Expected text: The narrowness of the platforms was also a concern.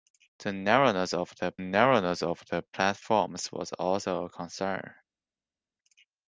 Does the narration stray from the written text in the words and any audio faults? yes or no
yes